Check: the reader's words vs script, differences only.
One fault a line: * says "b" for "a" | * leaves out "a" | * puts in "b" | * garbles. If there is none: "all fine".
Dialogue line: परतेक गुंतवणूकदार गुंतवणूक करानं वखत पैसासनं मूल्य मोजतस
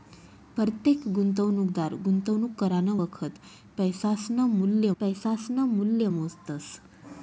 * puts in "पैसासनं मूल्य"